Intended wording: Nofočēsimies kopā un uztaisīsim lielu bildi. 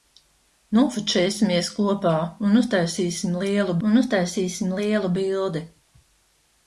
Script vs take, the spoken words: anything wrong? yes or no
yes